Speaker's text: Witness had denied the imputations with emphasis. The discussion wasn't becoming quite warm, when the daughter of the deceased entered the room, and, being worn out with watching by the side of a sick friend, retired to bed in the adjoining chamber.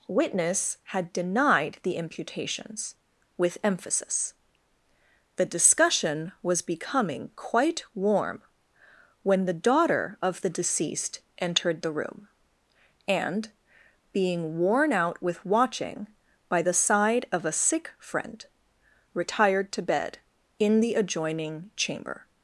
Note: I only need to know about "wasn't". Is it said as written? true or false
false